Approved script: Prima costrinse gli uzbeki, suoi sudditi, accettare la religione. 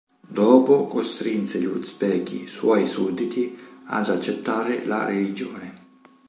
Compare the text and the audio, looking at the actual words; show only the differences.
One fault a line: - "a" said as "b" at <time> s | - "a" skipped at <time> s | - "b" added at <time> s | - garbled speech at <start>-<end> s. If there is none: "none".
- "Prima" said as "Dopo" at 0.3 s
- "ad" added at 3.9 s